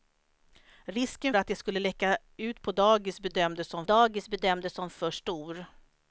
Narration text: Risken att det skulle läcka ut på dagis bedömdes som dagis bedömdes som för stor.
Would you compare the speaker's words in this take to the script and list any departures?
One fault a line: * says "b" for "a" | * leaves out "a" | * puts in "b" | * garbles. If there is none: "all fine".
all fine